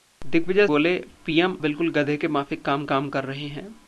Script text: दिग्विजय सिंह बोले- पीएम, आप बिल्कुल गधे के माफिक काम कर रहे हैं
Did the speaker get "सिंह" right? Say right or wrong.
wrong